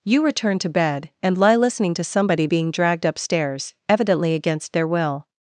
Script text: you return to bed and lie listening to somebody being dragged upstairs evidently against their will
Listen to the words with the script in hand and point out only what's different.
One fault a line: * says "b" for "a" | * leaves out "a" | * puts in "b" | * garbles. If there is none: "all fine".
all fine